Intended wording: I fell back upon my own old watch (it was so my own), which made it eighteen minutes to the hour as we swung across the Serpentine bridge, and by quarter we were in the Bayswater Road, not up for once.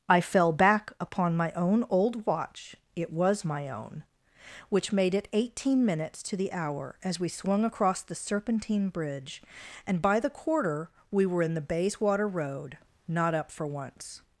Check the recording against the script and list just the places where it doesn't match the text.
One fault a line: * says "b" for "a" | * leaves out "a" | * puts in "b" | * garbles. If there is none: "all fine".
* leaves out "so"
* puts in "the"